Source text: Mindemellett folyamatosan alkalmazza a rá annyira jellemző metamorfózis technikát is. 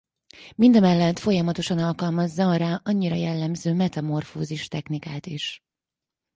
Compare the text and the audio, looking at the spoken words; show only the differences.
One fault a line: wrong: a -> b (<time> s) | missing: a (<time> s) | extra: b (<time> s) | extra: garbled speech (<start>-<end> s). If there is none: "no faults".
no faults